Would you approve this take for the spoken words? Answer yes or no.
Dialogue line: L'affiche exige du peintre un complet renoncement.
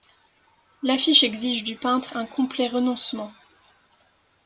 yes